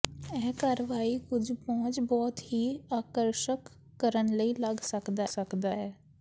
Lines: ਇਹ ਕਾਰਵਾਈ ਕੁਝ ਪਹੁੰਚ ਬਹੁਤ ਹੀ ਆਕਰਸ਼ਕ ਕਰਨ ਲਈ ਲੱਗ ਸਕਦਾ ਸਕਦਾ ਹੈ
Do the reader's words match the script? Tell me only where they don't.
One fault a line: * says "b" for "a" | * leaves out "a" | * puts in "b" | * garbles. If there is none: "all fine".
all fine